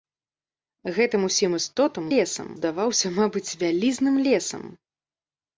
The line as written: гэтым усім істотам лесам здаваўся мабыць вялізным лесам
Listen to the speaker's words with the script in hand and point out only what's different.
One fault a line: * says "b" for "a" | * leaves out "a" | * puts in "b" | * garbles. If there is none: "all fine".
all fine